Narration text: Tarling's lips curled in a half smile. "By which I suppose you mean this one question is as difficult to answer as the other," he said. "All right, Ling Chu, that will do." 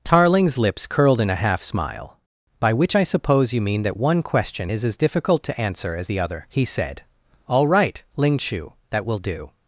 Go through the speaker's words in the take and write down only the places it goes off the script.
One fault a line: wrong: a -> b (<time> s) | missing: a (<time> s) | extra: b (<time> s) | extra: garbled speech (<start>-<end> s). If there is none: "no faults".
wrong: this -> that (3.8 s)